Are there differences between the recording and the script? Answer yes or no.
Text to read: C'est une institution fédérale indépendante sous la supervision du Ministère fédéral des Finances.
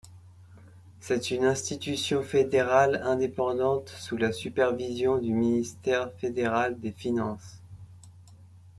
no